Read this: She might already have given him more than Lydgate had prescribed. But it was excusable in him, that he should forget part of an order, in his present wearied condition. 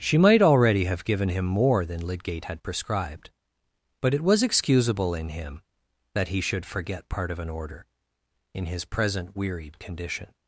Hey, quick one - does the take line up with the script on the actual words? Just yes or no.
yes